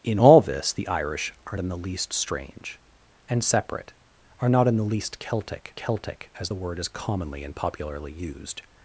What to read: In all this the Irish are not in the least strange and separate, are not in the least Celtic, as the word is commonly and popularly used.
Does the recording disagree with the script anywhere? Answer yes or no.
yes